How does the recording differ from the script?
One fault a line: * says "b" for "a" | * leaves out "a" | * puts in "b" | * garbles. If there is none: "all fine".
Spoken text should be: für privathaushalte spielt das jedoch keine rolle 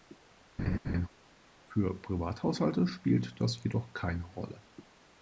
all fine